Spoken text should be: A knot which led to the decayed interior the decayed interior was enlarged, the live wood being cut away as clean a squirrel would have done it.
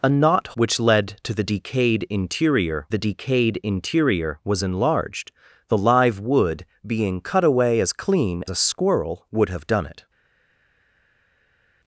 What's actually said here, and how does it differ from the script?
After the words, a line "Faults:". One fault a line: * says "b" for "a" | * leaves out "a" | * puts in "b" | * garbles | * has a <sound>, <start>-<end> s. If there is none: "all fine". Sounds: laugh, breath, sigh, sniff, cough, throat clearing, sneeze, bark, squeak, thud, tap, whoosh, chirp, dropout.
A knot which led to the decayed interior the decayed interior was enlarged, the live wood being cut away as clean a squirrel would have done it.
Faults:
all fine